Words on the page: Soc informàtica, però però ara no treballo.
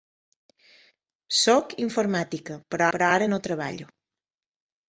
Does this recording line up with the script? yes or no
yes